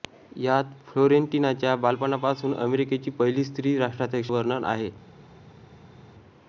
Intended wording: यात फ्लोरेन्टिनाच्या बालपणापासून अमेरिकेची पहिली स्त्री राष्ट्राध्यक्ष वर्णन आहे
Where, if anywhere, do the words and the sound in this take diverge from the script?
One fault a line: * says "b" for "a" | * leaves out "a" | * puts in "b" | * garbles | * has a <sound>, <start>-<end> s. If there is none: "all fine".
all fine